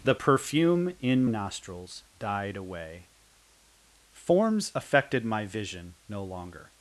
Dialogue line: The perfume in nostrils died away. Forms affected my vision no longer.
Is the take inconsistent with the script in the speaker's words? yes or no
no